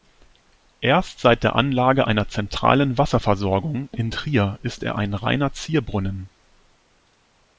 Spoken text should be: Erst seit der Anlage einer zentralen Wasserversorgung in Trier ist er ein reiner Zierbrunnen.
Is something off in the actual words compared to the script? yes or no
no